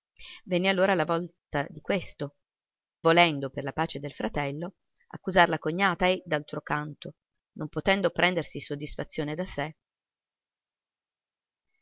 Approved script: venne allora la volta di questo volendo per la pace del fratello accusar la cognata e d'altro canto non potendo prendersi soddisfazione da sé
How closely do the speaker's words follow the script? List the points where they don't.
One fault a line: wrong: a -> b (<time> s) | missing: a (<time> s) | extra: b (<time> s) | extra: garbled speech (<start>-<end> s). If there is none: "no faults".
no faults